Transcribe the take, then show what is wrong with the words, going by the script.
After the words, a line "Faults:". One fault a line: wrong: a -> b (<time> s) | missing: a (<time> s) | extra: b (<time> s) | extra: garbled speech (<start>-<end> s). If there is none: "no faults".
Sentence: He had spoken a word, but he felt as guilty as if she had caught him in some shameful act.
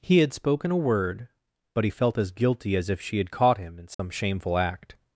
He had spoken a word, but he felt as guilty as if she had caught him in some shameful act.
Faults:
no faults